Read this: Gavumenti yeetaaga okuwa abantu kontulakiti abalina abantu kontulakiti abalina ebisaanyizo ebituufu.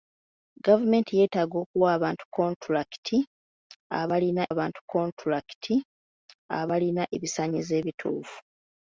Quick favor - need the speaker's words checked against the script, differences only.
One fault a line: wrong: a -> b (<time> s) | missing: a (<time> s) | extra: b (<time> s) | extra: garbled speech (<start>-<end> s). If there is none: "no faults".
no faults